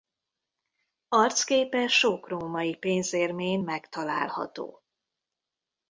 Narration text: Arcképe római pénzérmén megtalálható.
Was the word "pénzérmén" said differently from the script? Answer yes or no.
no